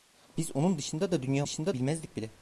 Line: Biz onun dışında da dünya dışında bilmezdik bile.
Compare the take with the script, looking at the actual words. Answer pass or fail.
pass